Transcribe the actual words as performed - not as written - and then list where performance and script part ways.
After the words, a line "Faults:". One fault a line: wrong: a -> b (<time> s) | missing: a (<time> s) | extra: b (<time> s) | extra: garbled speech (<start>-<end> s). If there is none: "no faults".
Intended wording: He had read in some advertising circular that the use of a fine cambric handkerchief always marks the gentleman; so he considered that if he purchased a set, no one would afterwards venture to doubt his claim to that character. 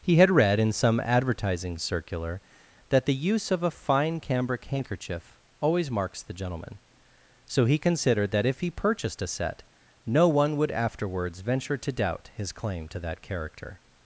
He had read in some advertising circular that the use of a fine cambric handkerchief always marks the gentleman; so he considered that if he purchased a set, no one would afterwards venture to doubt his claim to that character.
Faults:
no faults